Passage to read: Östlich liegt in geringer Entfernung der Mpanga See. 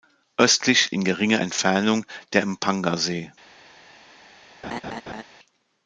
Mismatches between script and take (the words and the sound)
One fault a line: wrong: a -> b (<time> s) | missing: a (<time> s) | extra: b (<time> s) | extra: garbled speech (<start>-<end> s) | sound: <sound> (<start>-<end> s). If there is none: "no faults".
missing: liegt (0.9 s)
sound: laugh (4.6-5.2 s)